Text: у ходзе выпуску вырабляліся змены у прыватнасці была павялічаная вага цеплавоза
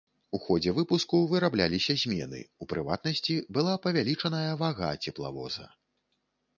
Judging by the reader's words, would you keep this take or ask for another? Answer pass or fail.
pass